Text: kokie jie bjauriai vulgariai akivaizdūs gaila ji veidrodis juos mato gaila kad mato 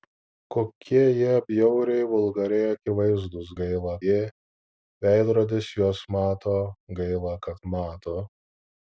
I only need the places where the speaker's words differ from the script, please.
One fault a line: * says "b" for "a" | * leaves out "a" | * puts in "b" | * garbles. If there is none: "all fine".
all fine